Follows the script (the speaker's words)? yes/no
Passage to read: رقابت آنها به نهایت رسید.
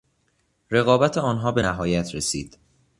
yes